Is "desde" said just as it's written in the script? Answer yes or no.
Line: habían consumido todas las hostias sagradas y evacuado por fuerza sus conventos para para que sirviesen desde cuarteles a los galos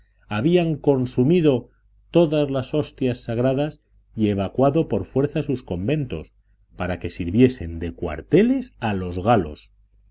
no